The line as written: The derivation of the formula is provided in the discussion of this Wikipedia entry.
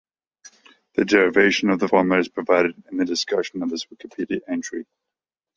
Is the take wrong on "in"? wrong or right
right